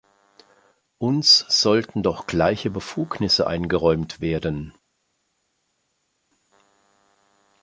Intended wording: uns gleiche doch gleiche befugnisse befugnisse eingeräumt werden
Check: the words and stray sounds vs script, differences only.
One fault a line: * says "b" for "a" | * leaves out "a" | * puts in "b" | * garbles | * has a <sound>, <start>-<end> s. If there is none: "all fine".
* says "sollten" for "gleiche"
* leaves out "befugnisse"